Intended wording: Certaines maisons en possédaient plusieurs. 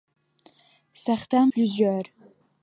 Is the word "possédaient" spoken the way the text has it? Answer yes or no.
no